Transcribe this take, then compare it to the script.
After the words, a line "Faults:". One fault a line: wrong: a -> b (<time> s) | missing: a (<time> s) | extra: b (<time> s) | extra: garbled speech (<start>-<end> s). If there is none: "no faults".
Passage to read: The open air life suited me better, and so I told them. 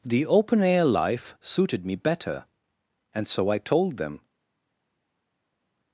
The open air life suited me better, and so I told them.
Faults:
no faults